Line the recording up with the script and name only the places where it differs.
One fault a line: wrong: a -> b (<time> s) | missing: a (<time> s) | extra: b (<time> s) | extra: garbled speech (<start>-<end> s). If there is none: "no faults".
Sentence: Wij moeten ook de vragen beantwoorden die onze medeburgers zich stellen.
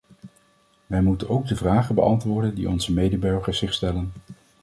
no faults